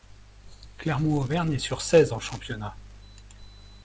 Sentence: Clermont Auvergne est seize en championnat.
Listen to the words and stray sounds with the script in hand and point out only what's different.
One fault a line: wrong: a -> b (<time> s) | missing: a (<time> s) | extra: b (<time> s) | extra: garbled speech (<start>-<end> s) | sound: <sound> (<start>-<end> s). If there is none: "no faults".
extra: sur (1.6 s)